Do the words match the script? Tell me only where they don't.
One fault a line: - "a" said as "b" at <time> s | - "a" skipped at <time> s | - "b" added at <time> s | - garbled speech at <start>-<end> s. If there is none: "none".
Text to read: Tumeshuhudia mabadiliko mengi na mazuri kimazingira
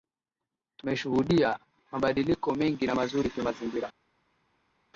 none